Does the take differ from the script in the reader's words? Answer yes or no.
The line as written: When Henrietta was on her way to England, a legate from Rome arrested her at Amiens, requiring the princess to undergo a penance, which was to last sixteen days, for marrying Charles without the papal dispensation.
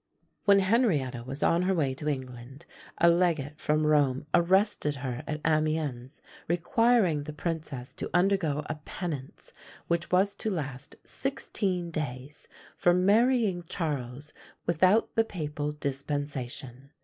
no